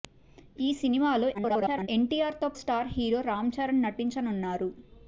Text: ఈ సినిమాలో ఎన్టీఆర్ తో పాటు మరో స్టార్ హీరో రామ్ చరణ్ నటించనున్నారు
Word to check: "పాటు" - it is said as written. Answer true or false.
false